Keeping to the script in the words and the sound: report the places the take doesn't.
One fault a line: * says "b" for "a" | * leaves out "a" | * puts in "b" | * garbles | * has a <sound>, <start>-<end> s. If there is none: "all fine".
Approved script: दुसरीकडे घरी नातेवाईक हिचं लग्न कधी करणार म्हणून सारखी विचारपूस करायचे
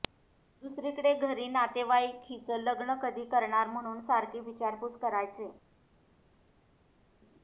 all fine